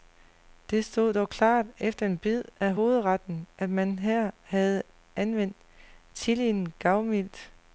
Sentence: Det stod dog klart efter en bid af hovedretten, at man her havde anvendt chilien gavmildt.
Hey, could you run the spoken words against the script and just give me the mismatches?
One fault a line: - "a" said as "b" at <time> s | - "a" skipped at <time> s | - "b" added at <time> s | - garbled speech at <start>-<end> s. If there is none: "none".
none